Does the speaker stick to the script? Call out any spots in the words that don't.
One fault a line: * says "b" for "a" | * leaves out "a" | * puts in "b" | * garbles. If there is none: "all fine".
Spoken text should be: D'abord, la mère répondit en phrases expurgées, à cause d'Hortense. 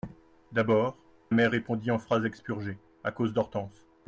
* leaves out "la"